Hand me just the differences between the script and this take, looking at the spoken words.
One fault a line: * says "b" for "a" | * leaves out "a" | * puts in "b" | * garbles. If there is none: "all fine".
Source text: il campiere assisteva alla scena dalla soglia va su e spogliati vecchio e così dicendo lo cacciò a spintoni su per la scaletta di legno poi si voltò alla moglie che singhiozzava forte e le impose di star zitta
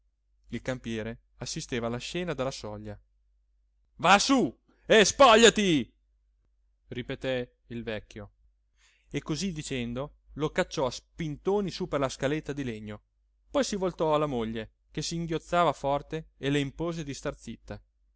* puts in "ripeté il"